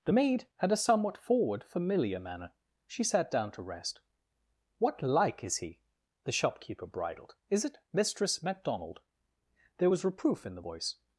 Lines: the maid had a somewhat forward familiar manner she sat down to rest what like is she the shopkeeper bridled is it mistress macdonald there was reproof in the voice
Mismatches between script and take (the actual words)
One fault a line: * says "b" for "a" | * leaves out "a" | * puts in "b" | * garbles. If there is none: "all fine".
* says "he" for "she"